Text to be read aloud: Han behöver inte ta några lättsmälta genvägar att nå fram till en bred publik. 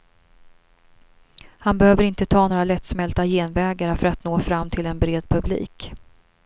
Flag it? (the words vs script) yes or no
yes